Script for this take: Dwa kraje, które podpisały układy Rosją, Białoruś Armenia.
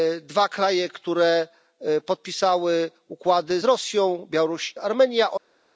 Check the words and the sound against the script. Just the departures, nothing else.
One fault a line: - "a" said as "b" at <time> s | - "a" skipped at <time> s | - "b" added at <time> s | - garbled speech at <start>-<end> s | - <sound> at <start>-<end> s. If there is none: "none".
none